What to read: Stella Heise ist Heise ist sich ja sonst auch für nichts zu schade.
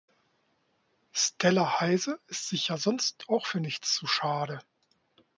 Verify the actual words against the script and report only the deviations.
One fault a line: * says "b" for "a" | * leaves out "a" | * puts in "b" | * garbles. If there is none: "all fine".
* leaves out "Heise ist"